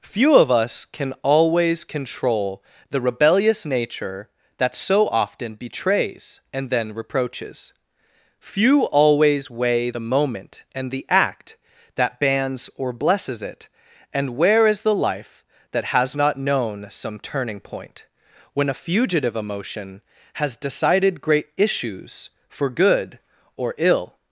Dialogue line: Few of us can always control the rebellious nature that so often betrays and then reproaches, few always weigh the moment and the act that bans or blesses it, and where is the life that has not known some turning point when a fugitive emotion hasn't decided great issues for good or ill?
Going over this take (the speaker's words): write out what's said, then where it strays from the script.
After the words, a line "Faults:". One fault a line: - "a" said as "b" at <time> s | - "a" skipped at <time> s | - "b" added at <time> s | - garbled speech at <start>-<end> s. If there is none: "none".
Few of us can always control the rebellious nature that so often betrays and then reproaches, few always weigh the moment and the act that bans or blesses it, and where is the life that has not known some turning point when a fugitive emotion has decided great issues for good or ill?
Faults:
- "hasn't" said as "has" at 20.3 s